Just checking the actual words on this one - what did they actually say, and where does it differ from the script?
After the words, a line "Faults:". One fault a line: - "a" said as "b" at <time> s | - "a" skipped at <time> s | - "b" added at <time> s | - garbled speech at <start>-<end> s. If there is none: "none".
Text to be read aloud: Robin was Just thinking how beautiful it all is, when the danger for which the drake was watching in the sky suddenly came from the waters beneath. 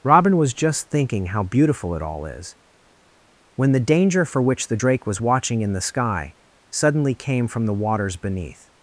Robin was Just thinking how beautiful it all is, when the danger for which the drake was watching in the sky suddenly came from the waters beneath.
Faults:
none